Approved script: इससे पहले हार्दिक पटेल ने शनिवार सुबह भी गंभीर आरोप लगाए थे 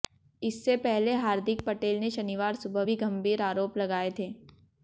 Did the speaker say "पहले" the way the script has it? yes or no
yes